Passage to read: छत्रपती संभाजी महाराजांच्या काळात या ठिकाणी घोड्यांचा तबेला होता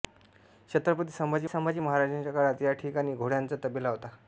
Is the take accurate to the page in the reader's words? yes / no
no